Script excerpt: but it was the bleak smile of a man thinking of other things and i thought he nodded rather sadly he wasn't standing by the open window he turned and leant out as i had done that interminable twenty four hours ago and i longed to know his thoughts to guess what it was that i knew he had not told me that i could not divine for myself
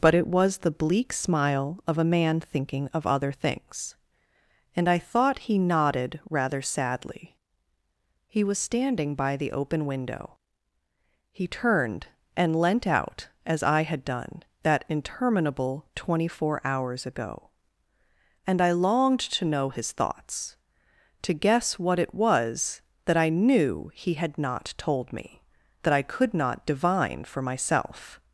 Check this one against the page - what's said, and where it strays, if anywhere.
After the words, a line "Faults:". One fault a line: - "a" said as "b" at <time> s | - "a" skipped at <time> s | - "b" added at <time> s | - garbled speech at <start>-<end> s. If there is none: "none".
but it was the bleak smile of a man thinking of other things and i thought he nodded rather sadly he was standing by the open window he turned and leant out as i had done that interminable twenty four hours ago and i longed to know his thoughts to guess what it was that i knew he had not told me that i could not divine for myself
Faults:
- "wasn't" said as "was" at 8.4 s